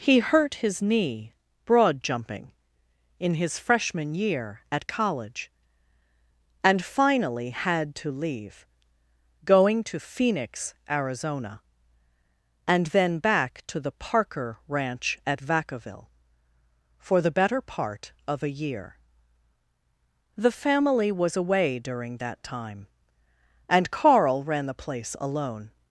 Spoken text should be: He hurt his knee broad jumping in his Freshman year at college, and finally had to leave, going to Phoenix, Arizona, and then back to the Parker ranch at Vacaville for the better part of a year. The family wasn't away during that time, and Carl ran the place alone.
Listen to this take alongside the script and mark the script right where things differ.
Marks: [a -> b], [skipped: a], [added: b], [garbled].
He hurt his knee broad jumping in his Freshman year at college, and finally had to leave, going to Phoenix, Arizona, and then back to the Parker ranch at Vacaville for the better part of a year. The family [wasn't -> was] away during that time, and Carl ran the place alone.